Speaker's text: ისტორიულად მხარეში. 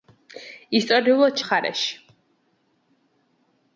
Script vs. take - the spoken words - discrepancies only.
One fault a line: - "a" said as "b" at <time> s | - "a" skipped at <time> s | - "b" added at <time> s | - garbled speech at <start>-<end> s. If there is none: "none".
none